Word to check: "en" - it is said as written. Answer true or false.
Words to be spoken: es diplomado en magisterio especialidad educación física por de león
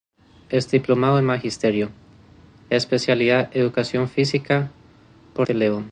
true